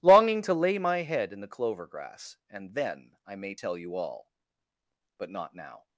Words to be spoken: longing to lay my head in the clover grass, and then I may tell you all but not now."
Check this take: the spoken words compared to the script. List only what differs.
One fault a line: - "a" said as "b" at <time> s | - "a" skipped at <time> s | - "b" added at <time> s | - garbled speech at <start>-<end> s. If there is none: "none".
none